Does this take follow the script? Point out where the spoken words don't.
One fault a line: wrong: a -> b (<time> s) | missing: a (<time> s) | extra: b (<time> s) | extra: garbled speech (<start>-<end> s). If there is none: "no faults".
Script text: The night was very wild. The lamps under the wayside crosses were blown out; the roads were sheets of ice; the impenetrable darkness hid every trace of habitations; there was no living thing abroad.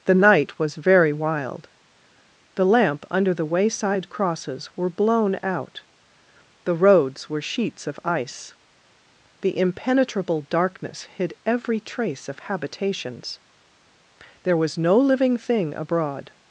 wrong: lamps -> lamp (2.6 s)